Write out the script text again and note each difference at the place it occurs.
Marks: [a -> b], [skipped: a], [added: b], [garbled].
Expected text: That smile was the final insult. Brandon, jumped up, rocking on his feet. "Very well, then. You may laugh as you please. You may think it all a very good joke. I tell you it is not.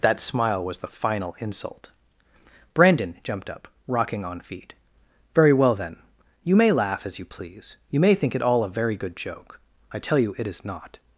That smile was the final insult. Brandon, jumped up, rocking on [skipped: his] feet. "Very well, then. You may laugh as you please. You may think it all a very good joke. I tell you it is not.